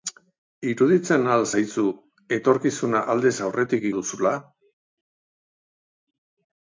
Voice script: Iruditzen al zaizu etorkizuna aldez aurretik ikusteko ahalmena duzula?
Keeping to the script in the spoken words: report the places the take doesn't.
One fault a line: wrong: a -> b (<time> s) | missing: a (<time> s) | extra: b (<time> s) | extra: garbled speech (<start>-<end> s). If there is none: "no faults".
missing: ikusteko ahalmena (3.9 s)